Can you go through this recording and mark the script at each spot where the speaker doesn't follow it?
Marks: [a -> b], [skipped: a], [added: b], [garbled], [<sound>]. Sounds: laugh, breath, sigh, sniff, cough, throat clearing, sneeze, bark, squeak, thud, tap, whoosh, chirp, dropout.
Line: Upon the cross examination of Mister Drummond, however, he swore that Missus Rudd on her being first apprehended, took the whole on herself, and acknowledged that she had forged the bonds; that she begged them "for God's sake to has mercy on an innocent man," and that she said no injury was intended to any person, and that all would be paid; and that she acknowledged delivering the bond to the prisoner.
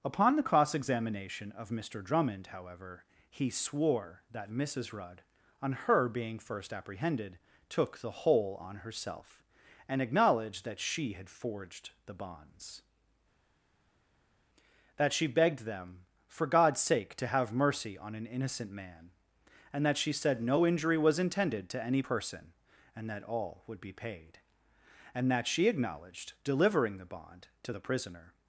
Upon the cross examination of Mister Drummond, however, he swore that Missus Rudd on her being first apprehended, took the whole on herself, and acknowledged that she had forged the bonds; that she begged them "for God's sake to [has -> have] mercy on an innocent man," and that she said no injury was intended to any person, and that all would be paid; and that she acknowledged delivering the bond to the prisoner.